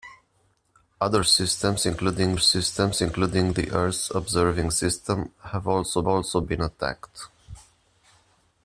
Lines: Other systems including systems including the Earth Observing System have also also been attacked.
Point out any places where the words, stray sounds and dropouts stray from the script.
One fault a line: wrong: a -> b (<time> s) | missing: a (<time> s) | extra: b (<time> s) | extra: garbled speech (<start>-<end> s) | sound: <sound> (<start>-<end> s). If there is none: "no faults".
no faults